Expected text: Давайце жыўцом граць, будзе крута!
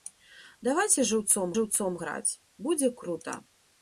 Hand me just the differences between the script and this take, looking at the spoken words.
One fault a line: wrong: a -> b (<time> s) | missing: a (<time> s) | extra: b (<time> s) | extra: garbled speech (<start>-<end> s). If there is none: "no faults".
extra: жыўцом (1.5 s)